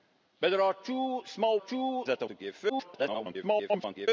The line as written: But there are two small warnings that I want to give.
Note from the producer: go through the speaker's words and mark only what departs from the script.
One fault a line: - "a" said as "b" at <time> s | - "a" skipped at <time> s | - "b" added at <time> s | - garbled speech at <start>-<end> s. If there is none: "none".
- "warnings" said as "two" at 1.6 s
- "want" skipped at 2.2 s
- garbled speech at 2.7-4.1 s